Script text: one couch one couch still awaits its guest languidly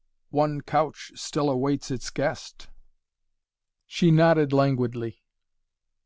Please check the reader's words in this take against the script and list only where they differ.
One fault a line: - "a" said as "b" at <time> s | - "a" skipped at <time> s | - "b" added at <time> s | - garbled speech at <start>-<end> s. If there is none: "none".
- "one couch" skipped at 1.1 s
- "she nodded" added at 3.8 s